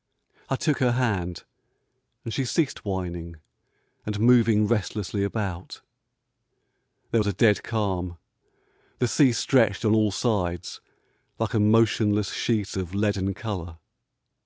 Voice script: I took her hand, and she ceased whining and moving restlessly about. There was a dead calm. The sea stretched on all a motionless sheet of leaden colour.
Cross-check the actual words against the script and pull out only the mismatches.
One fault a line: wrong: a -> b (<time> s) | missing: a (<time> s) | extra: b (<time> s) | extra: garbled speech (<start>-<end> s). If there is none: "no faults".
extra: sides like (10.1 s)